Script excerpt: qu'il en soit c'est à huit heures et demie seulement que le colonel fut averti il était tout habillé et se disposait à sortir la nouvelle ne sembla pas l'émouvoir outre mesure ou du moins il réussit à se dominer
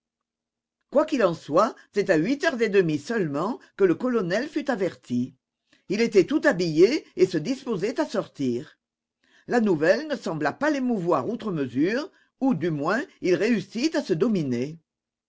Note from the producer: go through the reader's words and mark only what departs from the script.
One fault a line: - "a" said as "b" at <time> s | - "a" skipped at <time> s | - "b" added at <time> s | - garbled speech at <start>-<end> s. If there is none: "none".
none